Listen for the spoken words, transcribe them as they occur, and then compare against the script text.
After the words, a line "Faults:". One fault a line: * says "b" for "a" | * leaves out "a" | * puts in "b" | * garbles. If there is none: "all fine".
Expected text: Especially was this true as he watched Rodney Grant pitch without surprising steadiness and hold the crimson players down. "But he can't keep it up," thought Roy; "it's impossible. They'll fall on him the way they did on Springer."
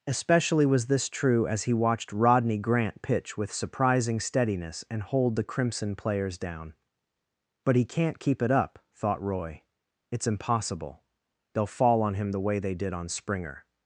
Especially was this true as he watched Rodney Grant pitch with surprising steadiness and hold the crimson players down. "But he can't keep it up," thought Roy; "it's impossible. They'll fall on him the way they did on Springer."
Faults:
* says "with" for "without"